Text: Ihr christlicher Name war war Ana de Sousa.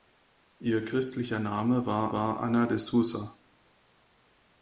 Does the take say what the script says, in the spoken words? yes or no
yes